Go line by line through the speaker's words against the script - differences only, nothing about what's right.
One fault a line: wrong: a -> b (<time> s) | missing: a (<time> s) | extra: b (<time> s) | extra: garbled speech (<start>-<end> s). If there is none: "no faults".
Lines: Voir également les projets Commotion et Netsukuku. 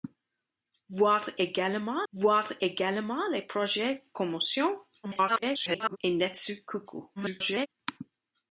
extra: voir également (2.1 s)
extra: garbled speech (5.0-6.0 s)
extra: garbled speech (7.2-7.7 s)